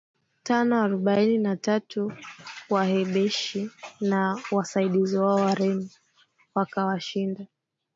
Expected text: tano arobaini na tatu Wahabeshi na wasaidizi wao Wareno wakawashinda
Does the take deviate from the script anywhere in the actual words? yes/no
no